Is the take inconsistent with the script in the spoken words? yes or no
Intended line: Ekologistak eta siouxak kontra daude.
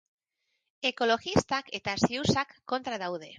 no